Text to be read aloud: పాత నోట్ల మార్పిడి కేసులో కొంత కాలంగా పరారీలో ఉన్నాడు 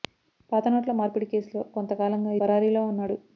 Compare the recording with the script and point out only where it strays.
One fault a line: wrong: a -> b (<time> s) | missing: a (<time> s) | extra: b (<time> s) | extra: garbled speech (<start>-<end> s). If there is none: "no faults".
no faults